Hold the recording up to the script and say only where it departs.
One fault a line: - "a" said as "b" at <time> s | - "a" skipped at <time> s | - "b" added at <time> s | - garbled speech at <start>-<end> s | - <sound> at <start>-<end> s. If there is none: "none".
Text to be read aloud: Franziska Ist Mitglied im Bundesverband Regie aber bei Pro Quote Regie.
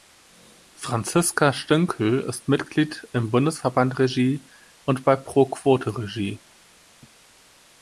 - "Stünkel" added at 1.5 s
- "aber" said as "und" at 4.8 s